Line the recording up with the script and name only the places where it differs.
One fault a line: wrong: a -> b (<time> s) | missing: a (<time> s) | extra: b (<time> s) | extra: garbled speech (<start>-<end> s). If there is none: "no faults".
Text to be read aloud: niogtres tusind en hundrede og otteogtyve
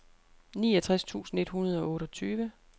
wrong: en -> et (1.4 s)